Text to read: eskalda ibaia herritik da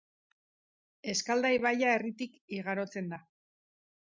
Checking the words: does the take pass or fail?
fail